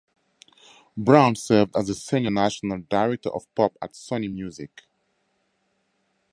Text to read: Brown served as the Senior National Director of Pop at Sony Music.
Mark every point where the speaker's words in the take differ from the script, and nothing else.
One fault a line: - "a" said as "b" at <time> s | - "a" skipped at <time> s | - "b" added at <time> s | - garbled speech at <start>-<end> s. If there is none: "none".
none